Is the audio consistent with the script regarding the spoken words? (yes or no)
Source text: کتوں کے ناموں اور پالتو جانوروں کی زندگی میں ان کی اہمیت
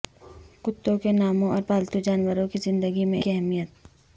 no